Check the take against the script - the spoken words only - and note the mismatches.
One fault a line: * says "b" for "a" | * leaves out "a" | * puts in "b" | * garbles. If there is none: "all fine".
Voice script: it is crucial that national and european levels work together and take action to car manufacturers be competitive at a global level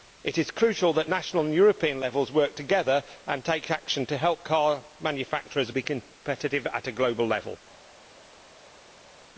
* puts in "help"